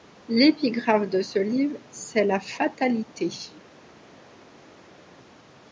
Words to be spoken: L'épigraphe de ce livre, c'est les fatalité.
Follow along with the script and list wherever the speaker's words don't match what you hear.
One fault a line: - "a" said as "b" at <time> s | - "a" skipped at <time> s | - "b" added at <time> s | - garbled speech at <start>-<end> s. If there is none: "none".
- "les" said as "la" at 2.2 s